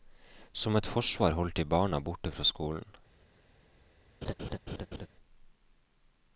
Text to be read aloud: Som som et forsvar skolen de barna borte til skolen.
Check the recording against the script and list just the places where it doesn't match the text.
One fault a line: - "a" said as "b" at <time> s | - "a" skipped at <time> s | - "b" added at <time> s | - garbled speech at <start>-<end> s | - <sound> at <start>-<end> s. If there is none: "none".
- "som" skipped at 0.8 s
- "skolen" said as "holdt" at 1.4 s
- "til" said as "fra" at 2.3 s
- laugh at 4.2-5.1 s